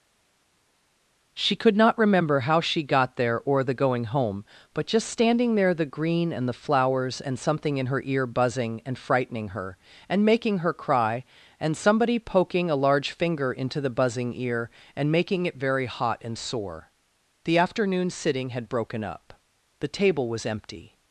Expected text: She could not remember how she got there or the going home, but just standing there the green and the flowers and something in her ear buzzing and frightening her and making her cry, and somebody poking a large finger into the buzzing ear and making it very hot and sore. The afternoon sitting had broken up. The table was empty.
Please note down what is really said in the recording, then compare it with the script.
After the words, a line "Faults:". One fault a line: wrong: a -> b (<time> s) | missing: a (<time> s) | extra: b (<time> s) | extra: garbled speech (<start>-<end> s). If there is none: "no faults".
She could not remember how she got there or the going home, but just standing there the green and the flowers and something in her ear buzzing and frightening her and making her cry, and somebody poking a large finger into the buzzing ear and making it very hot and sore. The afternoon sitting had broken up. The table was empty.
Faults:
no faults